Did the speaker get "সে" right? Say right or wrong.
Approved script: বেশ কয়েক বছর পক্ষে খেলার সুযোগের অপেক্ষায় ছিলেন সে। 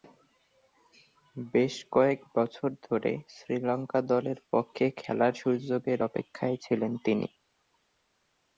wrong